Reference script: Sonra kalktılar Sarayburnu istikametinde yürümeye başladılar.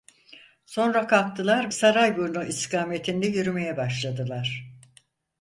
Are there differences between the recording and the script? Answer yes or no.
no